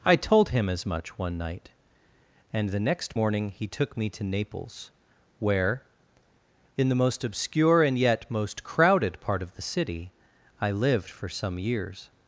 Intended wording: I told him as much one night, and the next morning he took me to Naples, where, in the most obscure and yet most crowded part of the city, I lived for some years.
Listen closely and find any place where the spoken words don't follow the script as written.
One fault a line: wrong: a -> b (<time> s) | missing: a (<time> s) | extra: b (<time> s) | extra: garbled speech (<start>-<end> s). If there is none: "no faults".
no faults